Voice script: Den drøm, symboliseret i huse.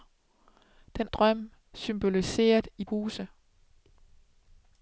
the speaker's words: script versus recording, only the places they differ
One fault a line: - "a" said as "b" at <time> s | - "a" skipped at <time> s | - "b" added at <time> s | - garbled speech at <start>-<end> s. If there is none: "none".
none